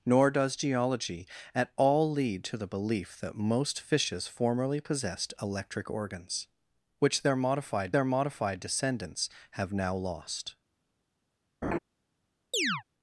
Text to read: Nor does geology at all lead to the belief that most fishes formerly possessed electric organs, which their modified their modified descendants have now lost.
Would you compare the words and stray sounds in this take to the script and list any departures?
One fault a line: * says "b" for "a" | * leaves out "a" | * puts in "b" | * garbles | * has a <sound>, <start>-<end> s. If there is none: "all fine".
* has a laugh, 11.6-11.8 s
* has a chirp, 12.5-12.8 s